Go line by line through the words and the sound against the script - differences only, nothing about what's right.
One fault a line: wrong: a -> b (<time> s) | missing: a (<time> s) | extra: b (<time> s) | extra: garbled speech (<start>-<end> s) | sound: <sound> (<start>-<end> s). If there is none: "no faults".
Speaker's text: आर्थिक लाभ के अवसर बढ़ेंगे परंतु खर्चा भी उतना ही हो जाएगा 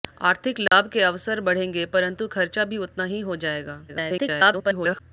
sound: dropout (0.7-0.7 s)
extra: garbled speech (3.9-5.0 s)